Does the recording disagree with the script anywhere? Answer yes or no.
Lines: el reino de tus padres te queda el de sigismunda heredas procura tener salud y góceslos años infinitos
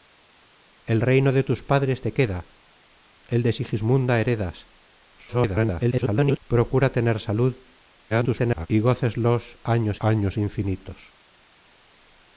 yes